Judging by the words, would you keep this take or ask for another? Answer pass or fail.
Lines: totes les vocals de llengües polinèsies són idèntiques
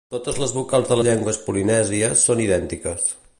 pass